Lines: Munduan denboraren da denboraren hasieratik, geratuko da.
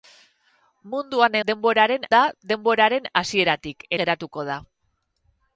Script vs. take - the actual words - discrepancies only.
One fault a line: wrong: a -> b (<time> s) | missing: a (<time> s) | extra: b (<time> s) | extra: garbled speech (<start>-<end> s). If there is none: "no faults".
no faults